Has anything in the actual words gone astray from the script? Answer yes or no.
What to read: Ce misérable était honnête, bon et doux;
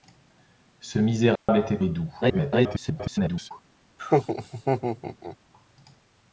yes